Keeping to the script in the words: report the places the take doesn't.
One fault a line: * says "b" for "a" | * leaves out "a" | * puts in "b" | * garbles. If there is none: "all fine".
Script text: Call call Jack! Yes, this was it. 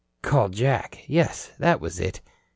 * leaves out "call"
* says "that" for "this"